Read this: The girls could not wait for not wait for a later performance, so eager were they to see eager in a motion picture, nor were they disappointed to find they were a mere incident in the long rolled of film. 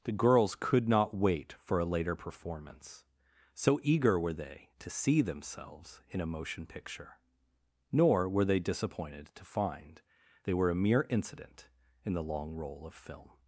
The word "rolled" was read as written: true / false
false